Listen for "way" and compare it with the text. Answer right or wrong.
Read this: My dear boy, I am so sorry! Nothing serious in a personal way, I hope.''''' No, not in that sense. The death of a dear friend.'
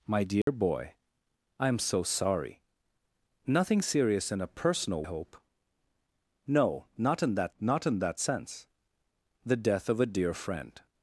wrong